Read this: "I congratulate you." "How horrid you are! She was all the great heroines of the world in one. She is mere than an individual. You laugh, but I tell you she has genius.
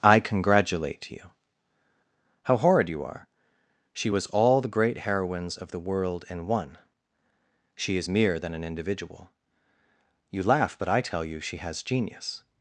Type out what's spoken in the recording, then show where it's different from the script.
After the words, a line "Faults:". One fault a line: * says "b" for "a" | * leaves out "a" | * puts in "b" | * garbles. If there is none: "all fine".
"I congratulate you." "How horrid you are! She was all the great heroines of the world in one. She is mere than an individual. You laugh, but I tell you she has genius.
Faults:
all fine